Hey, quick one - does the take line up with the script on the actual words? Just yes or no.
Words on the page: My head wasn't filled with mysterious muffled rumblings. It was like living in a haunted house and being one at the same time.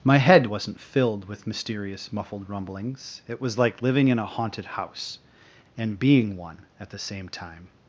yes